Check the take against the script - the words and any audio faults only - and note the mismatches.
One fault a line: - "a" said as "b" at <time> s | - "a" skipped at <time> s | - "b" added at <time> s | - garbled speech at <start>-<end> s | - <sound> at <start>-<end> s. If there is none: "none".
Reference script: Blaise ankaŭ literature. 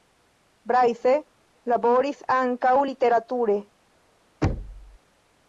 - "laboris" added at 1.7 s
- thud at 4.4-5.0 s